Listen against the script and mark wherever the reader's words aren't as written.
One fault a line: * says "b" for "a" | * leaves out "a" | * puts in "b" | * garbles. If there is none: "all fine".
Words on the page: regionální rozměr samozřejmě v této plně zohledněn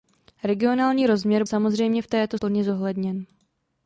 all fine